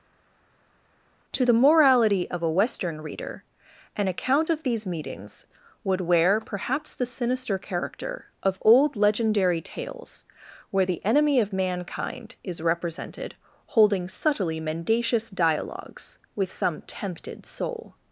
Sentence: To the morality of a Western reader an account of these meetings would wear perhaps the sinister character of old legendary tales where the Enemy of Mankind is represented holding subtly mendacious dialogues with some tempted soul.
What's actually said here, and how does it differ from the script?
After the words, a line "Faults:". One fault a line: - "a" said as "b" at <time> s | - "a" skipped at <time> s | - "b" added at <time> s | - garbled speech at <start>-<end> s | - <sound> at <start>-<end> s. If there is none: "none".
To the morality of a Western reader an account of these meetings would wear perhaps the sinister character of old legendary tales where the Enemy of Mankind is represented holding subtly mendacious dialogues with some tempted soul.
Faults:
none